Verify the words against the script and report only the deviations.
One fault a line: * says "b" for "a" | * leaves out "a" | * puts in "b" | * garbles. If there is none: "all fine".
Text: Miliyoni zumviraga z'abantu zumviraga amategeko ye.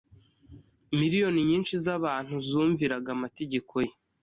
* says "nyinshi" for "zumviraga"